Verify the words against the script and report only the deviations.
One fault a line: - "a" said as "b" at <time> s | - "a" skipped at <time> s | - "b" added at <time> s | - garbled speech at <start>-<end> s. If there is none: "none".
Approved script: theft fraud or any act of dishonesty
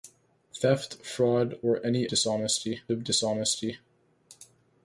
- "act" said as "dishonesty" at 2.1 s